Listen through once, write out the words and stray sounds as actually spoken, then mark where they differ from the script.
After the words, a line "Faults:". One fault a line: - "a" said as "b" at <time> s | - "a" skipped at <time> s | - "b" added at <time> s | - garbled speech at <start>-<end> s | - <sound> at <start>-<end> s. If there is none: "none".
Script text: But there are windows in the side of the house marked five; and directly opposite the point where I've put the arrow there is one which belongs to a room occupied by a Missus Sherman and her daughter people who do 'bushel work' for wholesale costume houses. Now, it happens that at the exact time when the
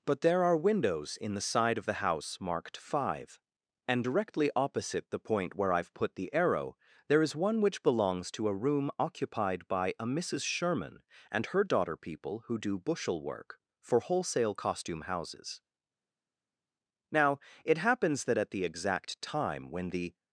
But there are windows in the side of the house marked five; and directly opposite the point where I've put the arrow there is one which belongs to a room occupied by a Missus Sherman and her daughter people who do 'bushel work' for wholesale costume houses. Now, it happens that at the exact time when the
Faults:
none